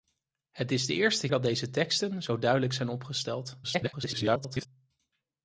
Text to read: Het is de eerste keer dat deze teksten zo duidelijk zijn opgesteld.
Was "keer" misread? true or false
true